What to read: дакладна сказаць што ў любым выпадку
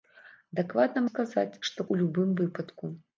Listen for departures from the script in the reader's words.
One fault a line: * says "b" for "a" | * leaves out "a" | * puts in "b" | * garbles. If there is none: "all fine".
all fine